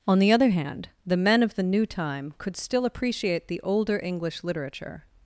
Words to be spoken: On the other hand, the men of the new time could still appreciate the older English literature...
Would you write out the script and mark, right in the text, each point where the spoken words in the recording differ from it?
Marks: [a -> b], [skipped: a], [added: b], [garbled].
On the other hand, the men of the new time could still appreciate the older English literature...